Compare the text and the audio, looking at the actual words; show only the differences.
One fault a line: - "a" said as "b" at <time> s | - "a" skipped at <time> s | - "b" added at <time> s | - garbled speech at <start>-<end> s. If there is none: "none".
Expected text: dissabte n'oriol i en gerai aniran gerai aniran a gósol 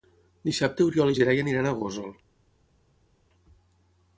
- "gerai aniran" skipped at 1.7 s